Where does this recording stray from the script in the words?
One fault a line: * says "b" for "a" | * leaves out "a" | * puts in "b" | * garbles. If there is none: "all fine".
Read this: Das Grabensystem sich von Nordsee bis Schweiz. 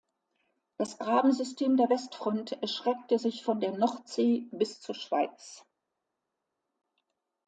* puts in "der Westfront erstreckte"
* puts in "der"
* puts in "zur"